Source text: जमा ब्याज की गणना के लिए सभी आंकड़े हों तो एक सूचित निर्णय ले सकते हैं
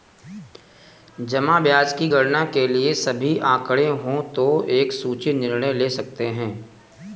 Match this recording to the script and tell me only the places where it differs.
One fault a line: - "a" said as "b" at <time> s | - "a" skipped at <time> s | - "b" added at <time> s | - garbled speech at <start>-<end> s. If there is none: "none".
none